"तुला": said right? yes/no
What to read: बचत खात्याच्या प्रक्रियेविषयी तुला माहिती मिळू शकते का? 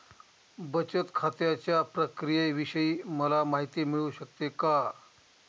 no